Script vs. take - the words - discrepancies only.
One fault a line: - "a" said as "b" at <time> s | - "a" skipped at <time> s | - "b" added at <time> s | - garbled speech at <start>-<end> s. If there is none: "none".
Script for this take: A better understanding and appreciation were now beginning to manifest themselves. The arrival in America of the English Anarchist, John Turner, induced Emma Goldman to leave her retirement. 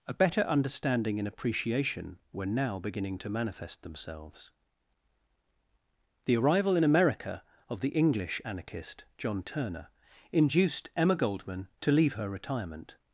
none